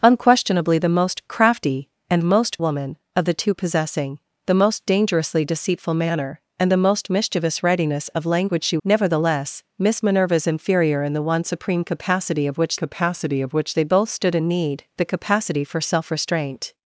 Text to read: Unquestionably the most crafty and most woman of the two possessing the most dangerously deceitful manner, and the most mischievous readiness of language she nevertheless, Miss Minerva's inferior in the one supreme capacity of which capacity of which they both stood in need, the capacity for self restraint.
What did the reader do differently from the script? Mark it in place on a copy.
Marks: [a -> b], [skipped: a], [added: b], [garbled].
Unquestionably the most crafty and most woman of the two possessing the most dangerously deceitful manner, and the most mischievous readiness of language she nevertheless, Miss Minerva's inferior in the one supreme capacity of which capacity of which they both stood in need, the capacity for self restraint.